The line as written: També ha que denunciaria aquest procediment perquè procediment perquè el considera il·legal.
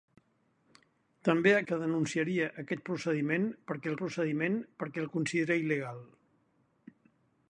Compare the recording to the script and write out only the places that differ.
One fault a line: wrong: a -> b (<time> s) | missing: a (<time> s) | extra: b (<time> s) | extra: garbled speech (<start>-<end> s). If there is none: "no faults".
no faults